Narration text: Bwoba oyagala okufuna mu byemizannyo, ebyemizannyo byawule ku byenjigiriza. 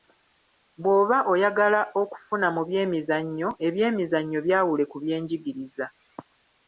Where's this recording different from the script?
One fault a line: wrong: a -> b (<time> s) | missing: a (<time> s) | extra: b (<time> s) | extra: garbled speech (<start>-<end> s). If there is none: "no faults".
no faults